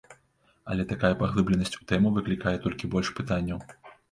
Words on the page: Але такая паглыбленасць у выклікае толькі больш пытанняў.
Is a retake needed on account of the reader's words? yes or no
yes